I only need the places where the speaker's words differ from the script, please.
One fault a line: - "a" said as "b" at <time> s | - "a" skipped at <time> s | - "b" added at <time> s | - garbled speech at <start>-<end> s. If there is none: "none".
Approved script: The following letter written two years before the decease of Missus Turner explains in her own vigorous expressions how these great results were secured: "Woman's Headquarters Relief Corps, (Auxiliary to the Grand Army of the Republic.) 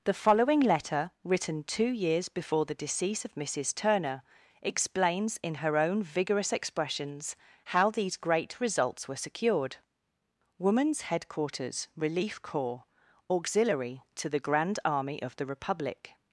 none